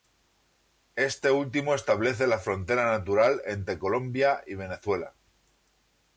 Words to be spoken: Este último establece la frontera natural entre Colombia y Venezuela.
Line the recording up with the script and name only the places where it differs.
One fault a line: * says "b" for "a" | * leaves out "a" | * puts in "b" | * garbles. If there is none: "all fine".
all fine